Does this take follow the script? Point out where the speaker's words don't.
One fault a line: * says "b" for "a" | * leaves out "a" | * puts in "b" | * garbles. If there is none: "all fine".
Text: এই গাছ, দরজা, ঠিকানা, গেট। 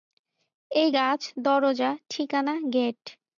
all fine